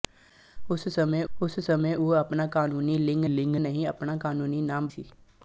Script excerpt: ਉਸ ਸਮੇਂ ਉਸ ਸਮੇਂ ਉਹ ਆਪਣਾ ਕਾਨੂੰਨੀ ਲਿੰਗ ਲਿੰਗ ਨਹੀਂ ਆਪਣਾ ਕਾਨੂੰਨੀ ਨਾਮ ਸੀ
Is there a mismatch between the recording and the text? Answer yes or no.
no